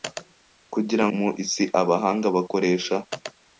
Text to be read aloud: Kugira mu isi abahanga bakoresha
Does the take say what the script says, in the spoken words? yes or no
yes